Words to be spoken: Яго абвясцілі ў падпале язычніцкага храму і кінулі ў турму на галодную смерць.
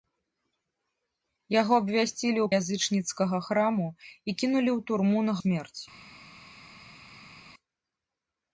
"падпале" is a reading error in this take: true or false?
true